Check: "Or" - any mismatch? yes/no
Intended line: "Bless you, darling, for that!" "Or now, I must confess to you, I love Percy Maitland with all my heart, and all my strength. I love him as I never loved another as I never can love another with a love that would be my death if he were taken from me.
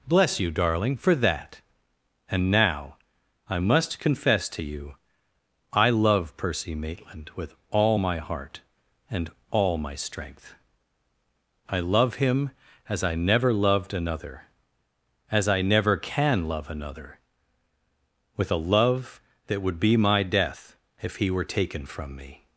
yes